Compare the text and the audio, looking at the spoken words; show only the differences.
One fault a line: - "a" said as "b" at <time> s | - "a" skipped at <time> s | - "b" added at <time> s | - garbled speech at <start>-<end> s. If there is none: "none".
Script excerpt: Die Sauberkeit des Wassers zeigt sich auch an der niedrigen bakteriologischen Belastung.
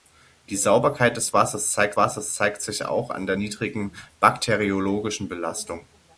- "Wassers zeigt" added at 1.9 s